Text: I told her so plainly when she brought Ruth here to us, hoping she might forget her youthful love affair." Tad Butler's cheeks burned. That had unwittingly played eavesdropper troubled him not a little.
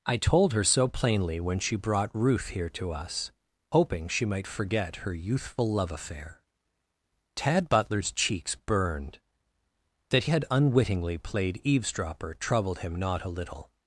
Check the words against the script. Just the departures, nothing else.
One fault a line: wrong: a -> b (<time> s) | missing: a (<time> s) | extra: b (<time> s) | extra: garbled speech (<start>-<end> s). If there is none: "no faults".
no faults